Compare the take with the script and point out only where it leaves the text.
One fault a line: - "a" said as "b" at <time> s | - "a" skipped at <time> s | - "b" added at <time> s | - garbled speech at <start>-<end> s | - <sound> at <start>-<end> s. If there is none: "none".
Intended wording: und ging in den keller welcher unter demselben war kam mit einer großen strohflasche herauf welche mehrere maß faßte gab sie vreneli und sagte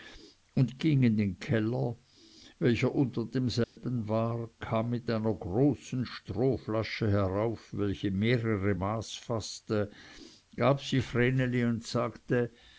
- dropout at 3.6-3.8 s